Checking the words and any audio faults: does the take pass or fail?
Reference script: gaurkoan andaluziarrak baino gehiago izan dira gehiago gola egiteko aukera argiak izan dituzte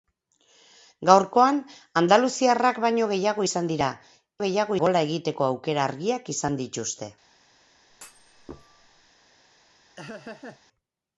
fail